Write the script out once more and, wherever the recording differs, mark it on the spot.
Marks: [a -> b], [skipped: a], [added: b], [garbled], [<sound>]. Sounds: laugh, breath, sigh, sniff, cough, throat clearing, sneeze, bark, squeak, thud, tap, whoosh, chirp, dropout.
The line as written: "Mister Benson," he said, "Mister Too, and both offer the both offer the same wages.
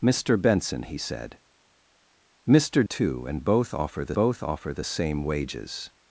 "Mister Benson," he said, "Mister Too, and both offer the both offer the same wages.